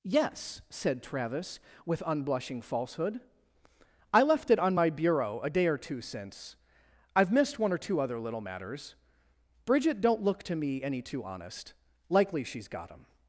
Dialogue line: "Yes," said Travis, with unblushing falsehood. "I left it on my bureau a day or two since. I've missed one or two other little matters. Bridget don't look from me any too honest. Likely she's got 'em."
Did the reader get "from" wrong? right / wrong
wrong